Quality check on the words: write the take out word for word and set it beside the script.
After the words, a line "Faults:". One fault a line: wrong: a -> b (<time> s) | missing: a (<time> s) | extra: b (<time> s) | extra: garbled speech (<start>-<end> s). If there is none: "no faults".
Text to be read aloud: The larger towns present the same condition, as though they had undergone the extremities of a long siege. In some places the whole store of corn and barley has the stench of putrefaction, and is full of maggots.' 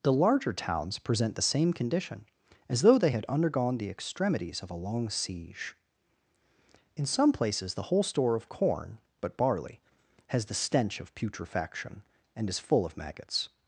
The larger towns present the same condition, as though they had undergone the extremities of a long siege. In some places the whole store of corn but barley has the stench of putrefaction, and is full of maggots.'
Faults:
wrong: and -> but (9.2 s)